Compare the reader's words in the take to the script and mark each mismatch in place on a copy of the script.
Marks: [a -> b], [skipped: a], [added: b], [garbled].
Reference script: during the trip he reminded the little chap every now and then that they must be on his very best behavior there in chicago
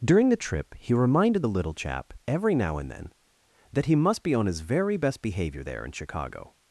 during the trip he reminded the little chap every now and then that [they -> he] must be on his very best behavior there in chicago